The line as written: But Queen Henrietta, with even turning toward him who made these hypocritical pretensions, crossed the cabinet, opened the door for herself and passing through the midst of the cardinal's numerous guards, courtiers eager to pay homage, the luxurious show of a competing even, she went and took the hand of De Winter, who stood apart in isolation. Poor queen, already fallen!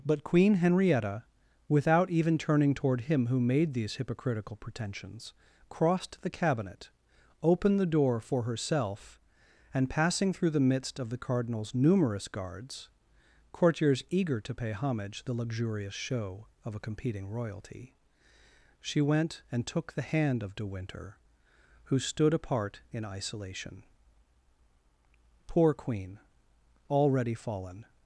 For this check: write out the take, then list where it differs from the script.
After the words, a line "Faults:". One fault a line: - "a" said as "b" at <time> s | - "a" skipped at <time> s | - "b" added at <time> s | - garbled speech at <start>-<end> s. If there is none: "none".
But Queen Henrietta, without even turning toward him who made these hypocritical pretensions, crossed the cabinet, opened the door for herself and passing through the midst of the cardinal's numerous guards, courtiers eager to pay homage, the luxurious show of a competing royalty, she went and took the hand of De Winter, who stood apart in isolation. Poor queen, already fallen!
Faults:
- "with" said as "without" at 1.7 s
- "even" said as "royalty" at 17.3 s